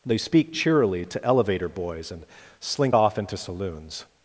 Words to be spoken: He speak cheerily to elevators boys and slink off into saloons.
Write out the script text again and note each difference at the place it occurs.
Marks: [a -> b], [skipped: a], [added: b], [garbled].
[He -> They] speak cheerily to [elevators -> elevator] boys and slink off into saloons.